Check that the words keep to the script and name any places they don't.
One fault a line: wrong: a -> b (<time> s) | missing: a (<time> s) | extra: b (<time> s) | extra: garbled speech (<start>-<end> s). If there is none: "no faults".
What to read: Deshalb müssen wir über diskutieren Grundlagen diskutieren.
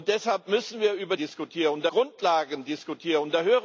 no faults